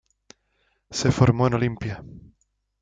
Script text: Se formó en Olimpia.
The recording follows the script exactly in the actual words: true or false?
true